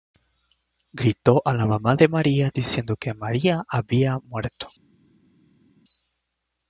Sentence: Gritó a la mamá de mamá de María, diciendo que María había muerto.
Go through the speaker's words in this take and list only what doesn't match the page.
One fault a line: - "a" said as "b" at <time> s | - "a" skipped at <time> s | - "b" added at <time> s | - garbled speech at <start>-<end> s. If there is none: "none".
- "mamá de" skipped at 2.1 s